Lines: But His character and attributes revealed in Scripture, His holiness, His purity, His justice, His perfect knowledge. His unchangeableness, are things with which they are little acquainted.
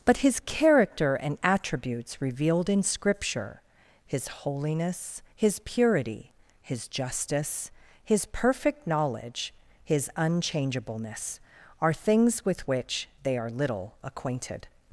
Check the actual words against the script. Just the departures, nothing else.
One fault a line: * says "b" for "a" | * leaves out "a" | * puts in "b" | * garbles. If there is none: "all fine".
all fine